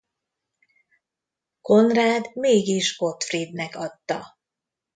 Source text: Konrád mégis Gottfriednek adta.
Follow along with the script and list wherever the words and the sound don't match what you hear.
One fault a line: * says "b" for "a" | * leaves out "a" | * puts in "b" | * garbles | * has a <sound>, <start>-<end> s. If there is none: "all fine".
all fine